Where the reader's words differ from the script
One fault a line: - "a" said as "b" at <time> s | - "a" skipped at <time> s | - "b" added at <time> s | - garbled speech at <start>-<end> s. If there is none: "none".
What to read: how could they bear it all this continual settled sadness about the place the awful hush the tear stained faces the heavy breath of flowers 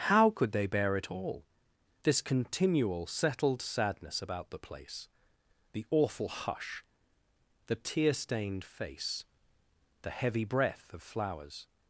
- "faces" said as "face" at 8.6 s